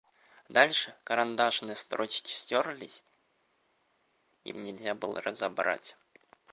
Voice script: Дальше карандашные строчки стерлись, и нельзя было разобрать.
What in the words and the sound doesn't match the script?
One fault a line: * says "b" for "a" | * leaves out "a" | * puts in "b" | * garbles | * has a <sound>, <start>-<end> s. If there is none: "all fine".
all fine